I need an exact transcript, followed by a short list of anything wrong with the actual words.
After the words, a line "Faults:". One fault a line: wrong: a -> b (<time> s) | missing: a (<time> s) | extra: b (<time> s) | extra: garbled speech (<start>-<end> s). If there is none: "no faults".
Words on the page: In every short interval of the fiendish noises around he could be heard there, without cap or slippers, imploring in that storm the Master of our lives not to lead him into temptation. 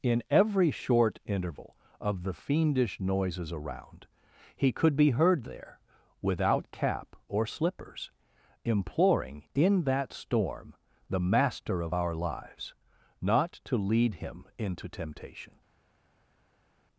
In every short interval of the fiendish noises around he could be heard there, without cap or slippers, imploring in that storm the Master of our lives not to lead him into temptation.
Faults:
no faults